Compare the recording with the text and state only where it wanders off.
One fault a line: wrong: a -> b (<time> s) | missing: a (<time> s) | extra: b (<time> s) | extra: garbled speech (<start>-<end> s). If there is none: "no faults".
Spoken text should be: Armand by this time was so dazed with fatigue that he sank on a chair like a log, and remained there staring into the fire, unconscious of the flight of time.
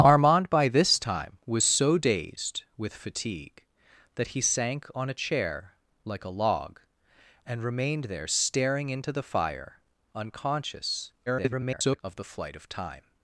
extra: garbled speech (11.3-12.0 s)